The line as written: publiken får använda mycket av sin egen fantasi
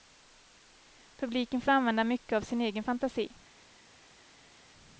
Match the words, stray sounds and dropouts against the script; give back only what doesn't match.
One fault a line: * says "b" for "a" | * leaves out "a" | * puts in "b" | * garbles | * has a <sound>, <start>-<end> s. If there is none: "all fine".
all fine